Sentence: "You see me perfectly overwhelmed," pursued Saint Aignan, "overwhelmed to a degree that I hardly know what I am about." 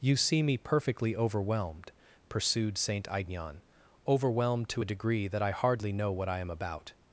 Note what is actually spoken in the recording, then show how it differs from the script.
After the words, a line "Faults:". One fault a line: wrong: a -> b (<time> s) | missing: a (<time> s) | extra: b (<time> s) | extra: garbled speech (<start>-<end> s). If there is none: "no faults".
"You see me perfectly overwhelmed," pursued Saint Aignan, "overwhelmed to a degree that I hardly know what I am about."
Faults:
no faults